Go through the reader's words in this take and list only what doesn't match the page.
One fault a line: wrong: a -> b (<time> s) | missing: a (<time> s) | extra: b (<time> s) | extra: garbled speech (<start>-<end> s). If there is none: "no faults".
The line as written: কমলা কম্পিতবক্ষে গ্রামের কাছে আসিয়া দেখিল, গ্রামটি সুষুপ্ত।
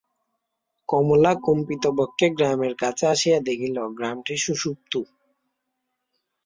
no faults